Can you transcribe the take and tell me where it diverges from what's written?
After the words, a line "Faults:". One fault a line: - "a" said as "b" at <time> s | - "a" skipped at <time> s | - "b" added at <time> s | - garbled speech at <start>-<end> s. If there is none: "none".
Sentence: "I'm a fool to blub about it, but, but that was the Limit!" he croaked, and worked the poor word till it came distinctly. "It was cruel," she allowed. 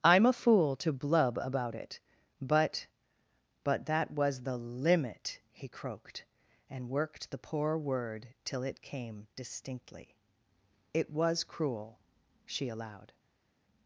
"I'm a fool to blub about it, but, but that was the Limit!" he croaked, and worked the poor word till it came distinctly. "It was cruel," she allowed.
Faults:
none